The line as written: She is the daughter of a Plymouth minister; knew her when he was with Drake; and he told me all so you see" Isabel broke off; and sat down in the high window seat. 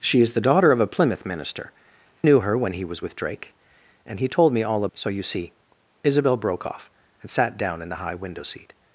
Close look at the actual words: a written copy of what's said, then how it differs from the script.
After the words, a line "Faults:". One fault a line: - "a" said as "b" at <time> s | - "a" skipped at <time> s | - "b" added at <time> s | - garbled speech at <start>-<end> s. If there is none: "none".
She is the daughter of a Plymouth minister; knew her when he was with Drake; and he told me all so you see" Isabel broke off; and sat down in the high window seat.
Faults:
none